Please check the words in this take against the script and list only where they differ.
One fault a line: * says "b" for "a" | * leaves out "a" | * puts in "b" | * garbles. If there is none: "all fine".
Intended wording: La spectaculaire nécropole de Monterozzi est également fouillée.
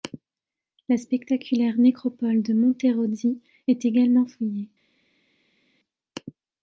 all fine